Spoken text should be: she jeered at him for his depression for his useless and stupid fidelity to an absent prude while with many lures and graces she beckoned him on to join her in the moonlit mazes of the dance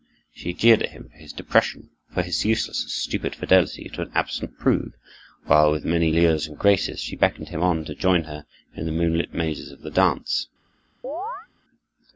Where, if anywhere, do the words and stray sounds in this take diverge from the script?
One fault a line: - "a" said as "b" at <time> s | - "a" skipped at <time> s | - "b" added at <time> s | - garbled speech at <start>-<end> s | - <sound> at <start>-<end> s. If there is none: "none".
- chirp at 11.0-11.5 s